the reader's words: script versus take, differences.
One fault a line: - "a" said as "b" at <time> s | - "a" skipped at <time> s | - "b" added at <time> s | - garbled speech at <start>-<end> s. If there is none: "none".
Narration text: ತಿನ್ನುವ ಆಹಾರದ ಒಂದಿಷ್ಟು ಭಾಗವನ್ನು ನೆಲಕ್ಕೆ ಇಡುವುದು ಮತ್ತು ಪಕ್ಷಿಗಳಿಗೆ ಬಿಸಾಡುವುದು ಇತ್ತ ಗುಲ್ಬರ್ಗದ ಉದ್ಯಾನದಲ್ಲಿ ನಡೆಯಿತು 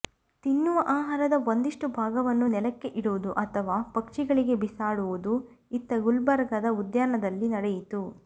- "ಮತ್ತು" said as "ಅಥವಾ" at 3.4 s